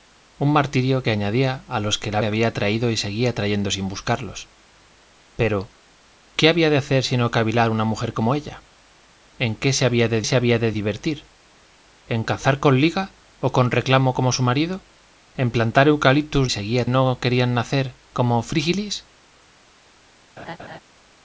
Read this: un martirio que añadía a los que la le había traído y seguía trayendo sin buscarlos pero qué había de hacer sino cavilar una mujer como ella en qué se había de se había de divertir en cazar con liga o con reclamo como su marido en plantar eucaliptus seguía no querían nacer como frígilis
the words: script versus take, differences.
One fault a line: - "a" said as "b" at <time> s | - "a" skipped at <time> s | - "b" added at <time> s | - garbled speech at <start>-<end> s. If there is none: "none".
none